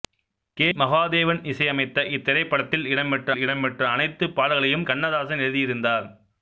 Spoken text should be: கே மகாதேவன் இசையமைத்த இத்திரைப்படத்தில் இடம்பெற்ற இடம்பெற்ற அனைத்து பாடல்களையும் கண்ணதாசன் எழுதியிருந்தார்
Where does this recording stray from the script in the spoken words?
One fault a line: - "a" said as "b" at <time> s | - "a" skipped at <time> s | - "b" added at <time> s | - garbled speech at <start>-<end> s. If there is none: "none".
none